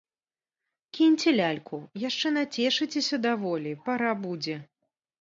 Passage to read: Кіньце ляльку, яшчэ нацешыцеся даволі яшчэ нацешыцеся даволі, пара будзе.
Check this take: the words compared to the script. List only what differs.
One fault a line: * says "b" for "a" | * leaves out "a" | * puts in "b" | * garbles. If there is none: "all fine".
* leaves out "яшчэ нацешыцеся даволі"